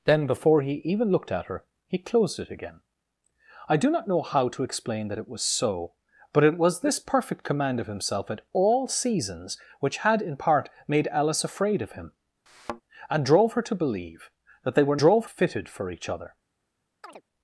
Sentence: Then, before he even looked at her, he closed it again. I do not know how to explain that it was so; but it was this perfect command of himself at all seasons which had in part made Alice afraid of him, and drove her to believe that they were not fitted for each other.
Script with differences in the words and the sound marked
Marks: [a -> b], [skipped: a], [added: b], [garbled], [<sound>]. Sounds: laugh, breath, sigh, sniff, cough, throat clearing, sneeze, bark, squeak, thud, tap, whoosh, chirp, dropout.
Then, before he even looked at her, he closed it again. I do not know how to explain that it was so; but it was this perfect command of himself at all seasons which had in part made Alice afraid of him, [thud] and drove her to believe that they were [not -> drove] fitted for each other. [chirp]